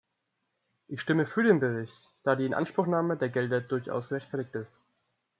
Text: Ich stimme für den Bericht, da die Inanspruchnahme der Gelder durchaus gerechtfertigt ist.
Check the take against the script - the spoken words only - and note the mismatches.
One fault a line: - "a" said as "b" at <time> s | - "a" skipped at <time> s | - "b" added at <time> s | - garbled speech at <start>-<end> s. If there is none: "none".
none